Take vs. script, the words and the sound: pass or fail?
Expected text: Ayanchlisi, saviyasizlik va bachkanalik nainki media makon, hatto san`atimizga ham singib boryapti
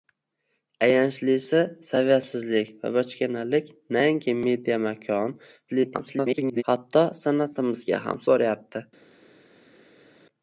fail